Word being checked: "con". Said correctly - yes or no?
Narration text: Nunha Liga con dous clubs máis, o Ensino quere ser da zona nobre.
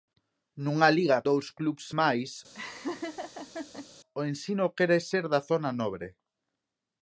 no